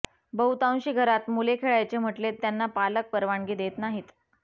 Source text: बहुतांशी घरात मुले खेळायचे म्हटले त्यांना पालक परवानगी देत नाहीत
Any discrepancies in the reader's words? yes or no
no